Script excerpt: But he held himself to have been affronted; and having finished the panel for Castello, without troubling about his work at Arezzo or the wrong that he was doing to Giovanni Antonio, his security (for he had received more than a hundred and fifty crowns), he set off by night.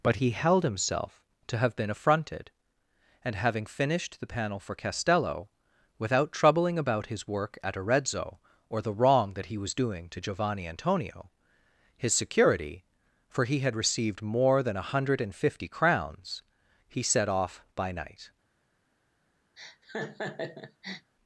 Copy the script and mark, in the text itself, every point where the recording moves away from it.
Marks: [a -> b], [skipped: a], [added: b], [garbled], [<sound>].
But he held himself to have been affronted; and having finished the panel for Castello, without troubling about his work at Arezzo or the wrong that he was doing to Giovanni Antonio, his security (for he had received more than a hundred and fifty crowns), he set off by night. [laugh]